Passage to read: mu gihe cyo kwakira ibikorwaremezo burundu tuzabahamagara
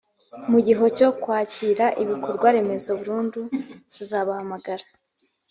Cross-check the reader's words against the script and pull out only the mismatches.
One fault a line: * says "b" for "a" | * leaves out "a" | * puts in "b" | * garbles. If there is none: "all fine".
all fine